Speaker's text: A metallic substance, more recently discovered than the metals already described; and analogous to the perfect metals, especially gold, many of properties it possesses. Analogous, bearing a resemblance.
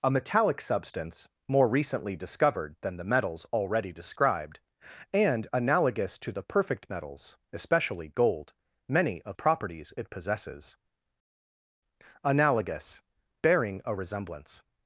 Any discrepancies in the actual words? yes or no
no